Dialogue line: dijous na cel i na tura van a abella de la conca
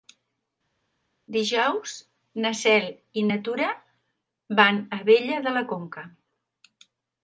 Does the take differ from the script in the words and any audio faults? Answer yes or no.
no